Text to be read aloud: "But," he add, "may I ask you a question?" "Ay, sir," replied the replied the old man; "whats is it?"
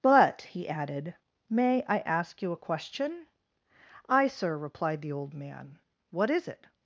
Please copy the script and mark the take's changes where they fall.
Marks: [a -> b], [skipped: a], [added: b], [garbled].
"But," he [add, -> added] "may I ask you a question?" "Ay, sir," replied the [skipped: replied the] old man; ["whats -> what] is it?"